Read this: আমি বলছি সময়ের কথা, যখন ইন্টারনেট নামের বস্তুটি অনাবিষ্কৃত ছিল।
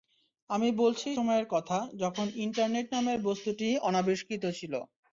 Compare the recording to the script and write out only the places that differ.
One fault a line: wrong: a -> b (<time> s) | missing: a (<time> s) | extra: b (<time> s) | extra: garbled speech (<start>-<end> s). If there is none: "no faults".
no faults